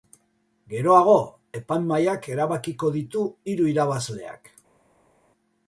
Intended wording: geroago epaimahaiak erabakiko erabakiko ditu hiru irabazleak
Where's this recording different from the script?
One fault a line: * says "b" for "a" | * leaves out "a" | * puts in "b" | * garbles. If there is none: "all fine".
* leaves out "erabakiko"